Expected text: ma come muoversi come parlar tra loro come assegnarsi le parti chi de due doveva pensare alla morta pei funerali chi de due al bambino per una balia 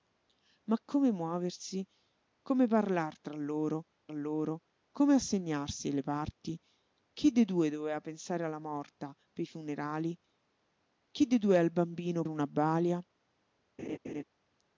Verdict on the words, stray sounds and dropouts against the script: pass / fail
fail